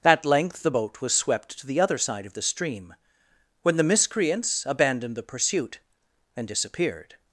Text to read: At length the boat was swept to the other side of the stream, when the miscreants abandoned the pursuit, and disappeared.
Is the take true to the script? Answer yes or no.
yes